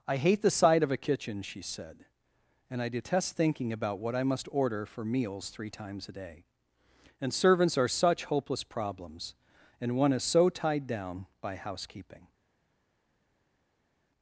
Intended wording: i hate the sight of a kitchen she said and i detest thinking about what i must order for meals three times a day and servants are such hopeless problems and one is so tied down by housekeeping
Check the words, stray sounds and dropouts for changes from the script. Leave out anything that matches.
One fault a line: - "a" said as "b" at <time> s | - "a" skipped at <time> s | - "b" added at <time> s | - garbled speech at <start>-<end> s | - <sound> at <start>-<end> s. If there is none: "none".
none